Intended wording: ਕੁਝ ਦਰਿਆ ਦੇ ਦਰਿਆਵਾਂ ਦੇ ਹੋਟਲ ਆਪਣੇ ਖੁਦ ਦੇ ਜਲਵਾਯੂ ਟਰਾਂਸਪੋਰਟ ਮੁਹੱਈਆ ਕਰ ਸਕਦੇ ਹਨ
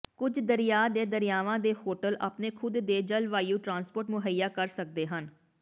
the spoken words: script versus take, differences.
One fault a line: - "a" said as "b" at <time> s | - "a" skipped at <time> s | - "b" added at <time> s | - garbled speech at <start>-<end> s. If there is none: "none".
none